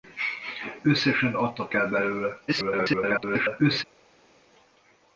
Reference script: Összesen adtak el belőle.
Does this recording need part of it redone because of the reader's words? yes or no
yes